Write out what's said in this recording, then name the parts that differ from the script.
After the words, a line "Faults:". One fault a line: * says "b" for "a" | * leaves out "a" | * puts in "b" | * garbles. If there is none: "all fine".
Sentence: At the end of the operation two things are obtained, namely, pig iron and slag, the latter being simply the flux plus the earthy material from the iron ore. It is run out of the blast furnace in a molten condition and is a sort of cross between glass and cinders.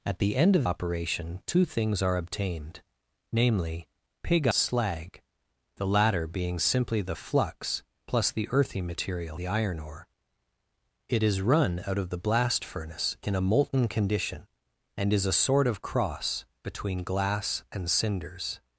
At the end of operation two things are obtained, namely, pig slag, the latter being simply the flux plus the earthy material the iron ore. It is run out of the blast furnace in a molten condition and is a sort of cross between glass and cinders.
Faults:
* leaves out "the"
* leaves out "iron and"
* leaves out "from"